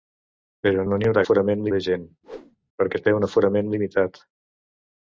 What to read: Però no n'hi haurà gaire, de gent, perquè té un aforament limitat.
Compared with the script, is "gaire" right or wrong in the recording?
wrong